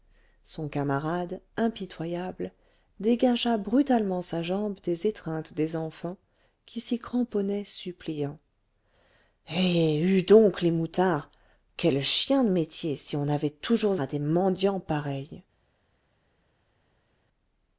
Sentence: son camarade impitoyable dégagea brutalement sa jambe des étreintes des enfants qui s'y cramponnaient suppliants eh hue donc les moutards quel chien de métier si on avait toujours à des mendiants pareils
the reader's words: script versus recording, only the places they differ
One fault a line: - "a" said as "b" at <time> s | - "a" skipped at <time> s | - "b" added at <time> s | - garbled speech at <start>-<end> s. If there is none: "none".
none